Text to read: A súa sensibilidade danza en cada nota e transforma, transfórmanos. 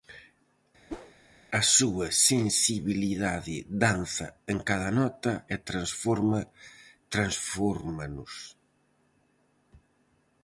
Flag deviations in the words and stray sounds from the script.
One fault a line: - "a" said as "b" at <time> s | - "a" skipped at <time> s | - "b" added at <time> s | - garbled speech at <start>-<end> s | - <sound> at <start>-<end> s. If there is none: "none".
- whoosh at 0.9-1.1 s